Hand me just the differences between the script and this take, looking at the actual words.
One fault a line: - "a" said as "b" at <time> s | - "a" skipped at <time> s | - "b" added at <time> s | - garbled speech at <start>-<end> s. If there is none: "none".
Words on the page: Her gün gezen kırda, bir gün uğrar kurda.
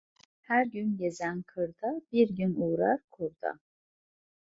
none